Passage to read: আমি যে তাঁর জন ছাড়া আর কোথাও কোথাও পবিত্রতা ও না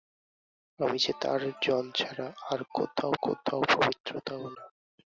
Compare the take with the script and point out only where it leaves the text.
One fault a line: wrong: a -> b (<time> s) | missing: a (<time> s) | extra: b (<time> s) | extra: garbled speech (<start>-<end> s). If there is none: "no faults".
no faults